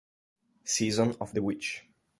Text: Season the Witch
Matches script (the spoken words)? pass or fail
fail